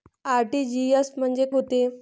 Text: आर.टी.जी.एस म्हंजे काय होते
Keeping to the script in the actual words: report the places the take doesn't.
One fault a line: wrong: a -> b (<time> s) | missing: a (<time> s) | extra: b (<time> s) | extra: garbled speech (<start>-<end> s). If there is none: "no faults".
missing: काय (1.4 s)